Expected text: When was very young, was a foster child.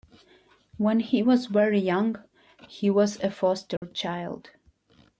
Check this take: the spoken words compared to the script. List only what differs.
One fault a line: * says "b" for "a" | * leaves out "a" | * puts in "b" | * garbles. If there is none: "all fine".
* puts in "he"
* puts in "he"